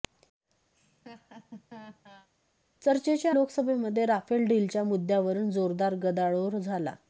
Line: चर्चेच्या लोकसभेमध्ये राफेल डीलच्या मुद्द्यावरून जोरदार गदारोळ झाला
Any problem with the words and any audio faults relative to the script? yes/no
yes